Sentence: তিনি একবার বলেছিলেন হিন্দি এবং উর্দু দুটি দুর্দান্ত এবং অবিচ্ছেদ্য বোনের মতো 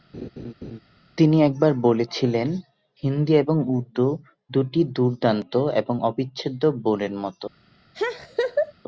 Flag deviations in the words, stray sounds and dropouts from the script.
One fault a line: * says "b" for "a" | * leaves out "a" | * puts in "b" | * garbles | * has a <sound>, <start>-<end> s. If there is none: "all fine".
* has a laugh, 0.1-0.8 s
* has a laugh, 7.9-8.7 s